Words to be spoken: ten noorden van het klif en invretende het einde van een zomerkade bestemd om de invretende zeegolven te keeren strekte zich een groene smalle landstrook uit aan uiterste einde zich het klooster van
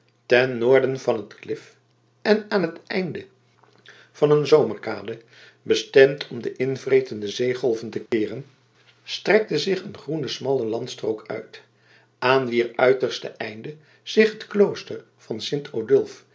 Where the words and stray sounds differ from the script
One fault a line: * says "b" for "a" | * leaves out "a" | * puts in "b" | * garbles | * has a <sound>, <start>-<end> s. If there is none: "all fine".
* says "aan" for "invretende"
* has a dropout, 8.1-8.1 s
* puts in "wier"